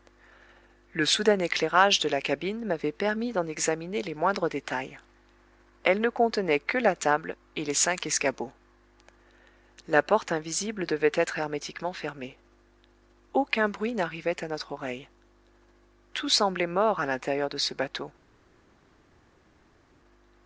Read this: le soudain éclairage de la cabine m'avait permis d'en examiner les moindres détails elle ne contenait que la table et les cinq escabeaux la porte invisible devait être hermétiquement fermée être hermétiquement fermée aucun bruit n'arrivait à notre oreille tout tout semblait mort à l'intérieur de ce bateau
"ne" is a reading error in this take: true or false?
false